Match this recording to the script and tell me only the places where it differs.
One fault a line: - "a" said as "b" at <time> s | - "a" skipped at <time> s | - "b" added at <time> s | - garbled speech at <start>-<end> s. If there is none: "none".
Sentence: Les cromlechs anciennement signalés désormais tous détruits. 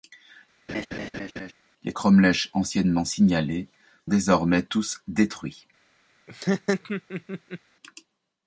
none